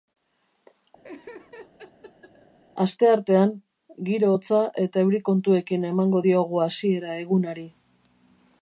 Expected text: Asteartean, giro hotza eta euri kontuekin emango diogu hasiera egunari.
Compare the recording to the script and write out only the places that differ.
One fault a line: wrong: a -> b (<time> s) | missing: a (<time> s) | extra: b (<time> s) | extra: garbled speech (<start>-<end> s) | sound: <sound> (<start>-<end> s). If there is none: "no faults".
sound: laugh (1.0-2.6 s)